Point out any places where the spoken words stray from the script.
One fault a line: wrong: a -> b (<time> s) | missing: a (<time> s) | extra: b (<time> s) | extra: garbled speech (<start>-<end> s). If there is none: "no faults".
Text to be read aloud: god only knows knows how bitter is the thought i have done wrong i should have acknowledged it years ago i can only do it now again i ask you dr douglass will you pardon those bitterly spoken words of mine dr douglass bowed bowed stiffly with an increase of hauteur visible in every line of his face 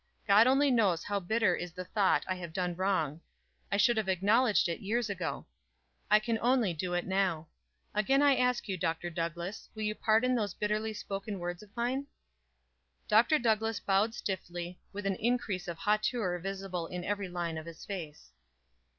missing: knows (1.0 s)
missing: bowed (14.1 s)